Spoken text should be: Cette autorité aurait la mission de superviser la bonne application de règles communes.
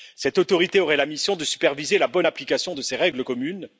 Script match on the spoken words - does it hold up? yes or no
no